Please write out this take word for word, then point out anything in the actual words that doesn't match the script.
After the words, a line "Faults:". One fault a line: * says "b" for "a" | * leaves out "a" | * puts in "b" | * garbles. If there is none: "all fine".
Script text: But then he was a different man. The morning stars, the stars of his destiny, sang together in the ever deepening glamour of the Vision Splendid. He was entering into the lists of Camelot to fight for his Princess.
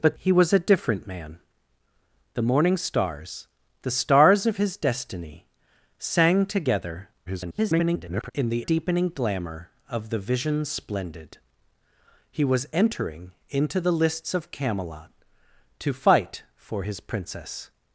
But he was a different man. The morning stars, the stars of his destiny, sang together [garbled] in the deepening glamour of the Vision Splendid. He was entering into the lists of Camelot to fight for his Princess.
Faults:
* leaves out "then"
* garbles
* leaves out "ever"